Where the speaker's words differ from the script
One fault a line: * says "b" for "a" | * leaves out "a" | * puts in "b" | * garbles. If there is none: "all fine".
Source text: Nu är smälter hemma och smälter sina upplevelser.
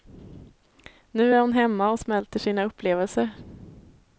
* says "hon" for "smälter"